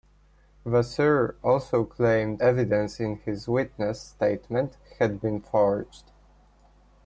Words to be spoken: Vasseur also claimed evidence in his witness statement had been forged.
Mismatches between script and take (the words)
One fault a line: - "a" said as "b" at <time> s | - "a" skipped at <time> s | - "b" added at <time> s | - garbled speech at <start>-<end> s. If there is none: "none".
none